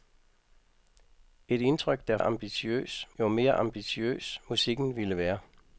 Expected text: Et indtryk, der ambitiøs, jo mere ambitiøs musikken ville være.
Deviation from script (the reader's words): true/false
false